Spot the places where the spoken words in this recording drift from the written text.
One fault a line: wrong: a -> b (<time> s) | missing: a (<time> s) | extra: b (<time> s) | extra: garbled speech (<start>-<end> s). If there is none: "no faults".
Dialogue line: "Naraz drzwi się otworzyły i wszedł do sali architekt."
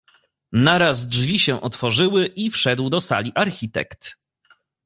no faults